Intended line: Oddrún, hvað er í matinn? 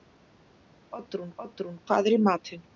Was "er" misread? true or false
false